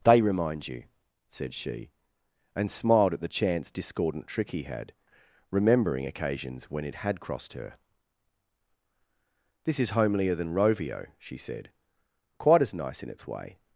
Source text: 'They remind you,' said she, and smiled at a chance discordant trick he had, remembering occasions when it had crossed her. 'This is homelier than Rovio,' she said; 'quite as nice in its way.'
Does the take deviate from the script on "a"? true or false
true